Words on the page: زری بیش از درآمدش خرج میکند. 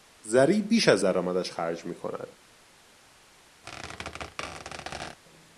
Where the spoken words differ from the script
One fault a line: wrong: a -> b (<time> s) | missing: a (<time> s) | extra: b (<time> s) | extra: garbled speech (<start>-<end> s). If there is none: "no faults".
no faults